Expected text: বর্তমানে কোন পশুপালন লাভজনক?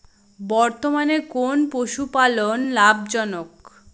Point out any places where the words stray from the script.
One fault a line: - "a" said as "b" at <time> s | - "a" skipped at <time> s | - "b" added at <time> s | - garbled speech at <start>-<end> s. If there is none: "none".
none